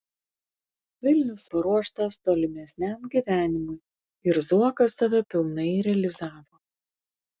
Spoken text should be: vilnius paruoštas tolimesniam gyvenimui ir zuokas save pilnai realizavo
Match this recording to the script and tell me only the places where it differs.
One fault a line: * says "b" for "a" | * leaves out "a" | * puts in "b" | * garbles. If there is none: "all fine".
all fine